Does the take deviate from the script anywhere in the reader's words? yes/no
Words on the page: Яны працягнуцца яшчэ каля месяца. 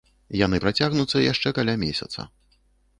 no